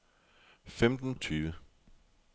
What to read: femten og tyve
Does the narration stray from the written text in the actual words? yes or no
no